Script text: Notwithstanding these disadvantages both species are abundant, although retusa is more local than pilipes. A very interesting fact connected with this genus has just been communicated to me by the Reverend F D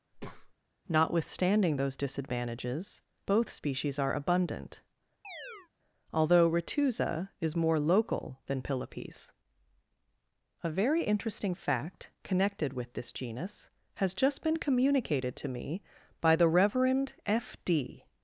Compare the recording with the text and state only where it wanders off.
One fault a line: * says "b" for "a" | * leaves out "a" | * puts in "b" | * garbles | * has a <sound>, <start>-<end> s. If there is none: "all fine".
* has a breath, 0.1-0.5 s
* says "those" for "these"
* has a chirp, 5.2-5.7 s